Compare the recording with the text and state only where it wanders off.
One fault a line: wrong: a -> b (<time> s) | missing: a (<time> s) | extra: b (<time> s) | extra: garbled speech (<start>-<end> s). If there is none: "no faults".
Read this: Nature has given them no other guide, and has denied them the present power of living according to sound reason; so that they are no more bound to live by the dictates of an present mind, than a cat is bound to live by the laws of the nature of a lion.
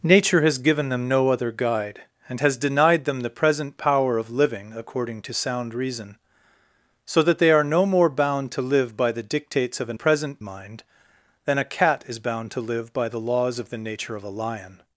no faults